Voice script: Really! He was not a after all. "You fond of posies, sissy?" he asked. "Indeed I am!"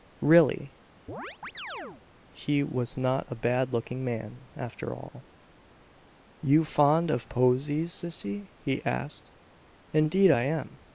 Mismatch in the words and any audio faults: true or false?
true